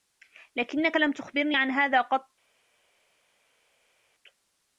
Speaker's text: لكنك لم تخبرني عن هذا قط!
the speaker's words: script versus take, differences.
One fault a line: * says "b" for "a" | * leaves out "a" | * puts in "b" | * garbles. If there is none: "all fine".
all fine